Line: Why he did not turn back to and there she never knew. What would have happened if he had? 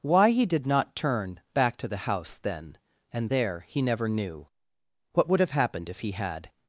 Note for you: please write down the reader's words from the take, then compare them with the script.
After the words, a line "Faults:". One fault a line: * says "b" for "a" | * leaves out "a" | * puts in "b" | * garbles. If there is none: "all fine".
Why he did not turn back to the house then and there he never knew. What would have happened if he had?
Faults:
* puts in "the house then"
* says "he" for "she"